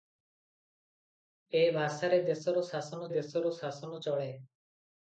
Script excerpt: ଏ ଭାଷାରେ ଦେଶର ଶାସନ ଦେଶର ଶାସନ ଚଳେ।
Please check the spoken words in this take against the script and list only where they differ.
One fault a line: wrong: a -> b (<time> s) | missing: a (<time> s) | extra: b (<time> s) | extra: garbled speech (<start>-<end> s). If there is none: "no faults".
no faults